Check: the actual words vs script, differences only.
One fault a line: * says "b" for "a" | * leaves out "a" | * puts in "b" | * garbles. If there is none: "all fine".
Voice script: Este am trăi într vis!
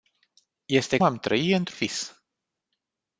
all fine